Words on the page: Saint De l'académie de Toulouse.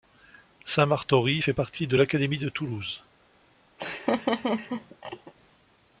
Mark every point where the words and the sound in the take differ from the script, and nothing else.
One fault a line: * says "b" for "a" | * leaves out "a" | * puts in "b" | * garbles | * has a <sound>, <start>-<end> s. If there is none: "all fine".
* puts in "Martory fait partie"
* has a laugh, 3.8-5.3 s